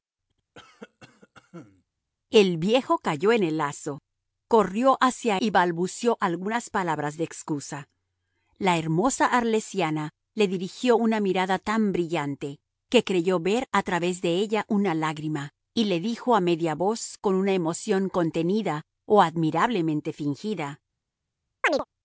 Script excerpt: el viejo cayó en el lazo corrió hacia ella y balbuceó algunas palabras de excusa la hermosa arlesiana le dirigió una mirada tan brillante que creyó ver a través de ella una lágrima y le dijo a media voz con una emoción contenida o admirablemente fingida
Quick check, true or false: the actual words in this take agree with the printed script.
false